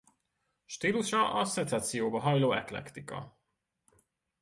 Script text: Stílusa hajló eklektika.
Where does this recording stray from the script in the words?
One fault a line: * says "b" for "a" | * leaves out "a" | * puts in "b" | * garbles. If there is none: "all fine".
* puts in "a szecesszióba"